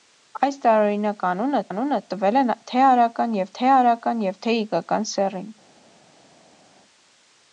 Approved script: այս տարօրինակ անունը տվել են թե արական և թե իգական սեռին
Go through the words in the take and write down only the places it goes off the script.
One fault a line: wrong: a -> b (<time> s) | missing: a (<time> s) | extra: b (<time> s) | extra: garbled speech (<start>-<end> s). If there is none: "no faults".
extra: անունը (1.7 s)
extra: արական և թե (3.8 s)